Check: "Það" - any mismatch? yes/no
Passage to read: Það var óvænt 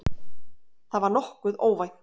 no